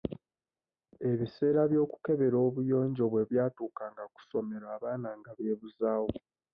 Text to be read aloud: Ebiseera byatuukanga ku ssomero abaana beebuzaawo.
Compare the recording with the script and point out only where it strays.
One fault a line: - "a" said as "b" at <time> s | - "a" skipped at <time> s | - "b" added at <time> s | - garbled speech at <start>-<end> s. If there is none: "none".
- "by'okukebera obuyonjo bwe" added at 1.7 s
- "nga" added at 5.2 s